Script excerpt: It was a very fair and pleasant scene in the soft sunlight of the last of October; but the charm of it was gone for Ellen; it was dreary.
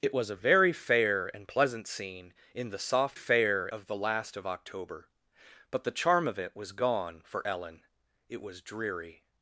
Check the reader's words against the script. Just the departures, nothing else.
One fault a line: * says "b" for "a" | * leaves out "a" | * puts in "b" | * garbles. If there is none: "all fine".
* says "fair" for "sunlight"